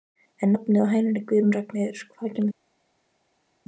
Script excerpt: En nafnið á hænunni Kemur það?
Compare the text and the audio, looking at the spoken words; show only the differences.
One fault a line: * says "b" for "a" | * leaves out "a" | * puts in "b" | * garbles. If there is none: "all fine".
* puts in "Guðrún Ragnheiður hvaðan"